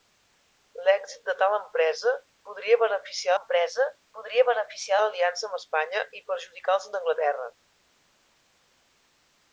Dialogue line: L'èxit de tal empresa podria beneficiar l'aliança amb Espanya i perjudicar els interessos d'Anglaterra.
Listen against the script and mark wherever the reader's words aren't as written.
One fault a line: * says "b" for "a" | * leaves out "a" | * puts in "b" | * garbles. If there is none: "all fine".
* puts in "empresa podria beneficiar"
* leaves out "interessos"